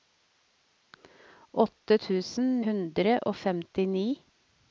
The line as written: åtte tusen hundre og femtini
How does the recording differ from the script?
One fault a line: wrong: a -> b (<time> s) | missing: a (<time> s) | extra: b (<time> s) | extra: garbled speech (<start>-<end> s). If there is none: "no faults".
no faults